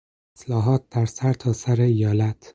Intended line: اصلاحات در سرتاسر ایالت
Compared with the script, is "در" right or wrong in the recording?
right